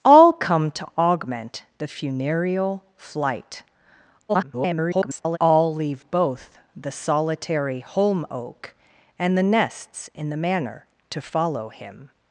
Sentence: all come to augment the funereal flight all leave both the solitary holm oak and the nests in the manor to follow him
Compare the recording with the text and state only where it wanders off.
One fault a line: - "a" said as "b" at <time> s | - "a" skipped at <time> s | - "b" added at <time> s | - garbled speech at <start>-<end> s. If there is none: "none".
- garbled speech at 4.3-5.4 s